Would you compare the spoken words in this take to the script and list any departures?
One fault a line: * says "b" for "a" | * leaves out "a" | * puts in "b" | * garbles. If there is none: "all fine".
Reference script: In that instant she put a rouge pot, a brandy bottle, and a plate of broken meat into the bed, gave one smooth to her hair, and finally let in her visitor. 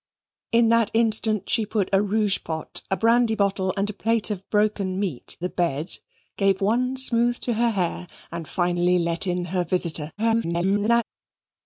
* leaves out "into"
* garbles